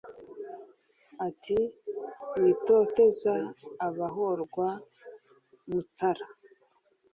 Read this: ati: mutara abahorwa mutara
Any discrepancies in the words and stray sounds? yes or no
yes